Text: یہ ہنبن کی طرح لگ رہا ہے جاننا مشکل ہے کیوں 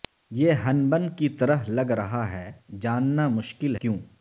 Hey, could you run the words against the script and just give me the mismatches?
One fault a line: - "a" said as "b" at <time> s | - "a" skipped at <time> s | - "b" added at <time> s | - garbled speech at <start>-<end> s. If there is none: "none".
- "ہے" skipped at 3.7 s